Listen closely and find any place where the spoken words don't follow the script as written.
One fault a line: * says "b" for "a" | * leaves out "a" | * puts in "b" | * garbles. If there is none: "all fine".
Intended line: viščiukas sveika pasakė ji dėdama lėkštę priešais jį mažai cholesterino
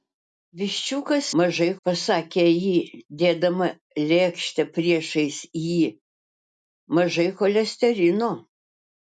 * says "mažai" for "sveika"